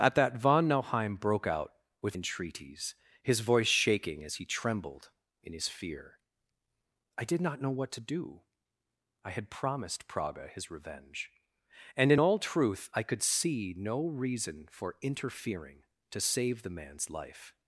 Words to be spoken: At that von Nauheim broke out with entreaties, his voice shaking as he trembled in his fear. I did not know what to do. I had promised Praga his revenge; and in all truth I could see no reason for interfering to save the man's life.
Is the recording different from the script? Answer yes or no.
no